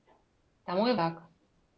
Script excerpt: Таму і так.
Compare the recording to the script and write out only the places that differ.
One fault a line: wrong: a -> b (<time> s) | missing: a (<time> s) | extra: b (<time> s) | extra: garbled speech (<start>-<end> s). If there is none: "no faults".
no faults